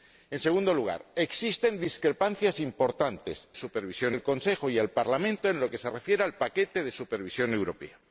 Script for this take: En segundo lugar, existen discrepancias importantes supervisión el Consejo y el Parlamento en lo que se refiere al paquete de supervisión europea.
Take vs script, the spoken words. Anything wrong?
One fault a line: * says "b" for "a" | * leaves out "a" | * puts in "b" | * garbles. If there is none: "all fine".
all fine